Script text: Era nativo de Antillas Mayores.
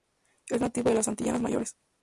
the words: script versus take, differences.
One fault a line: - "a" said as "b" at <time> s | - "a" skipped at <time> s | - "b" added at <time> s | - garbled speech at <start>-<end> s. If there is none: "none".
- "Era" said as "Es" at 0.5 s
- "las" added at 1.0 s